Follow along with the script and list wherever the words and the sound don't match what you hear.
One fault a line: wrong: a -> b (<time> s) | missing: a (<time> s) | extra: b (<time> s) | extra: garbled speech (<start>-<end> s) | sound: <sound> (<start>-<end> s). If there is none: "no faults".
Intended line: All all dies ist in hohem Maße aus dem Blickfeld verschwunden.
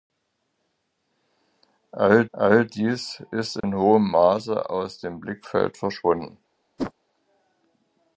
sound: dropout (3.6-3.6 s)
sound: whoosh (6.8-6.9 s)